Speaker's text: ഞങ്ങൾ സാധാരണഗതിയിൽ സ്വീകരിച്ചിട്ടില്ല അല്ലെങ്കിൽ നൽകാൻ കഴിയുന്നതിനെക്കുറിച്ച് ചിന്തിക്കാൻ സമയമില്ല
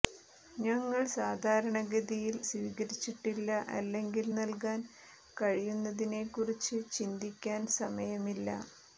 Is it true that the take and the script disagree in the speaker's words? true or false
false